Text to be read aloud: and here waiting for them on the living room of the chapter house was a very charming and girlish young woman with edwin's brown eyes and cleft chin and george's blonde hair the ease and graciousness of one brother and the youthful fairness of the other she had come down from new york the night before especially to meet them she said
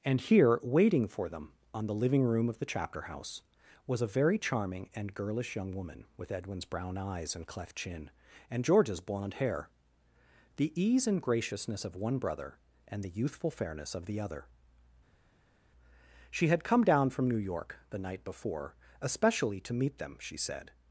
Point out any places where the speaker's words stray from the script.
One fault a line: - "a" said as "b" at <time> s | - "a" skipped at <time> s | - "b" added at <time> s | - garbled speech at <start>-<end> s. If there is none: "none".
none